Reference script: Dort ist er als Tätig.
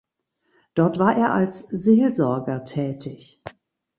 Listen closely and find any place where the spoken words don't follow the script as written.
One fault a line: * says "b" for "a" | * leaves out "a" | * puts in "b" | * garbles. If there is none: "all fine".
* says "war" for "ist"
* puts in "Seelsorger"